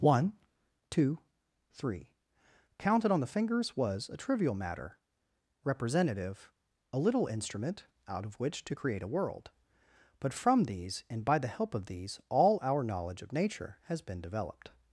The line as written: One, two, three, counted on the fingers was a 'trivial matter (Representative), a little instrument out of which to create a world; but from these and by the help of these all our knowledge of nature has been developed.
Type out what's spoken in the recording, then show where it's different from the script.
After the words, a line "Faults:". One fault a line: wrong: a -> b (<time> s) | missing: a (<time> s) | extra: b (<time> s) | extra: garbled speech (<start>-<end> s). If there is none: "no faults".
One, two, three, counted on the fingers was a 'trivial matter (Representative), a little instrument out of which to create a world; but from these and by the help of these all our knowledge of nature has been developed.
Faults:
no faults